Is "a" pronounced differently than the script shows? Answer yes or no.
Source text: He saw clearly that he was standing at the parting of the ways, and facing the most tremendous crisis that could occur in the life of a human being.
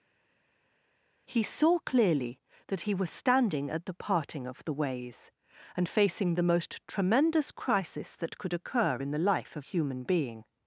yes